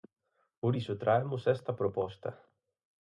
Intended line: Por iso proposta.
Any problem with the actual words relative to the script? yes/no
yes